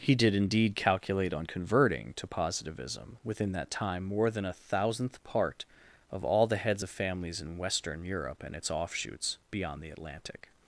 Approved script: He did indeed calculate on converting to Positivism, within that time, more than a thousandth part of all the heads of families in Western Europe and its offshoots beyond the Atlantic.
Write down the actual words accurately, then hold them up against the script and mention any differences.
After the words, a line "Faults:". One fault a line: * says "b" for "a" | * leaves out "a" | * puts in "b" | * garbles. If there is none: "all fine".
He did indeed calculate on converting to Positivism, within that time, more than a thousandth part of all the heads of families in Western Europe and its offshoots beyond the Atlantic.
Faults:
all fine